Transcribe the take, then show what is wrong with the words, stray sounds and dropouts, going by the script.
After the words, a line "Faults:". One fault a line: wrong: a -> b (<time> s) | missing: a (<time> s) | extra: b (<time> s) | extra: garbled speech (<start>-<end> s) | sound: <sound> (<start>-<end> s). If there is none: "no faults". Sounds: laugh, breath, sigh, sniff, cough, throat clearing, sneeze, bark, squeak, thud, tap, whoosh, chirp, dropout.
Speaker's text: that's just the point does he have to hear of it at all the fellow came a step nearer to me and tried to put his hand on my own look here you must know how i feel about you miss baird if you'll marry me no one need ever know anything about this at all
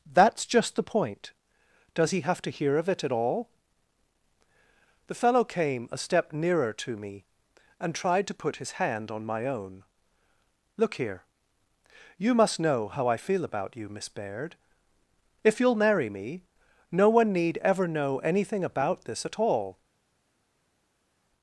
that's just the point does he have to hear of it at all the fellow came a step nearer to me and tried to put his hand on my own look here you must know how i feel about you miss baird if you'll marry me no one need ever know anything about this at all
Faults:
no faults